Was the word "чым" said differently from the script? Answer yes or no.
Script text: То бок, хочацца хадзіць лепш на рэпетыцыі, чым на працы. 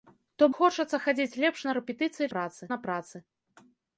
yes